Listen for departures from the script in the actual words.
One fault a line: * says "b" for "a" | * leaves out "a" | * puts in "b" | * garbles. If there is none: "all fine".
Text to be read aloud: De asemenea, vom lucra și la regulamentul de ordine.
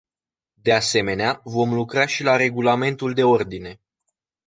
all fine